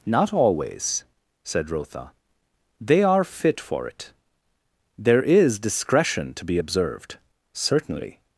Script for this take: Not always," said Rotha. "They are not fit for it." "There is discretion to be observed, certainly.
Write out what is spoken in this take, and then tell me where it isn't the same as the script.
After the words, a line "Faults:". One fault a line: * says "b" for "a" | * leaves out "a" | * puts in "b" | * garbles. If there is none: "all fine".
Not always," said Rotha. "They are fit for it." "There is discretion to be observed, certainly.
Faults:
* leaves out "not"